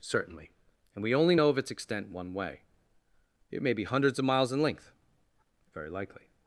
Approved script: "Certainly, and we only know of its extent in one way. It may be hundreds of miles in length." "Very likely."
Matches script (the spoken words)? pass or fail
fail